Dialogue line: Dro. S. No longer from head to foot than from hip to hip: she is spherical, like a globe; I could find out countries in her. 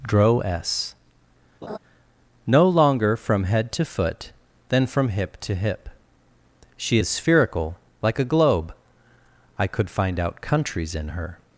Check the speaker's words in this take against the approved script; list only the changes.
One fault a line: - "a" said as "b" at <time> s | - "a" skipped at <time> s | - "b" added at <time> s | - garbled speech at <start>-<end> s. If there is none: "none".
none